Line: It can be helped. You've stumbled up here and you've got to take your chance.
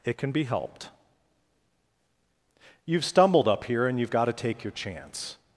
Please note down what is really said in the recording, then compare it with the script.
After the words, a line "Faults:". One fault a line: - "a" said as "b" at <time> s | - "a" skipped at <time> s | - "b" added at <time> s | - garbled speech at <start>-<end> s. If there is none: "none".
It can be helped. You've stumbled up here and you've got to take your chance.
Faults:
none